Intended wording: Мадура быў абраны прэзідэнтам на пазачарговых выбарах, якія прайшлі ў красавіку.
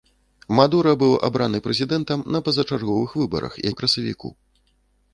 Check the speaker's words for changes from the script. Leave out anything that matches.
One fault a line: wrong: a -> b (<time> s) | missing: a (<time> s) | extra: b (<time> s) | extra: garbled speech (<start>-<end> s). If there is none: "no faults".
missing: якія прайшлі (3.5 s)